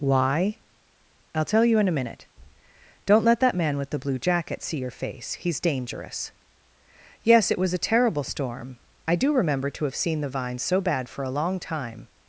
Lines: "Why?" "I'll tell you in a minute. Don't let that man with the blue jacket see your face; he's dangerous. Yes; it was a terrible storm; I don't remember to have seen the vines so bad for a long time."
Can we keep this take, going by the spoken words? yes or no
no